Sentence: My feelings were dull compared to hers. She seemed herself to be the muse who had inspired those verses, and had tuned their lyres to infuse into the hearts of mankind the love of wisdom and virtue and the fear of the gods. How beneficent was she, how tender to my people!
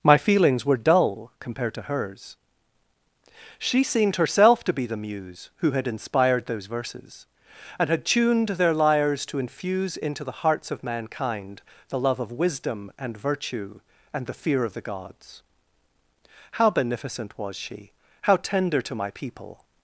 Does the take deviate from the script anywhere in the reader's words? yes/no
no